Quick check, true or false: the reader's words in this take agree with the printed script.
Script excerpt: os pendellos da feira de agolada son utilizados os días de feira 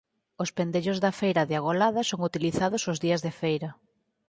true